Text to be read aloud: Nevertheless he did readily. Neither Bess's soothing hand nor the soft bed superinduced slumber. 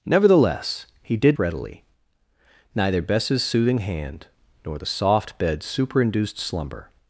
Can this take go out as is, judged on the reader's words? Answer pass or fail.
pass